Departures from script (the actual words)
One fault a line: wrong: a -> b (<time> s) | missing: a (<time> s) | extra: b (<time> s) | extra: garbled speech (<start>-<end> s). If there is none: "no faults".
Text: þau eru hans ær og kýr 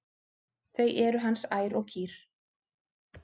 no faults